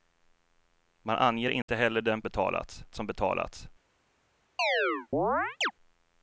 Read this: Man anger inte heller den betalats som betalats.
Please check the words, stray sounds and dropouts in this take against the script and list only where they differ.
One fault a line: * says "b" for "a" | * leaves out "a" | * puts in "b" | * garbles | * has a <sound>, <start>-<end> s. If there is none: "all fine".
* has a dropout, 1.6-1.7 s
* has a chirp, 4.6-5.7 s